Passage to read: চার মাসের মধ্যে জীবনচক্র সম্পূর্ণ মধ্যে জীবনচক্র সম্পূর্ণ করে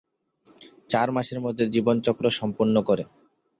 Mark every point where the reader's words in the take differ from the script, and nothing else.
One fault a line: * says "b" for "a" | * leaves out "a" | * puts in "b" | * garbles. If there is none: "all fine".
* leaves out "মধ্যে জীবনচক্র সম্পূর্ণ"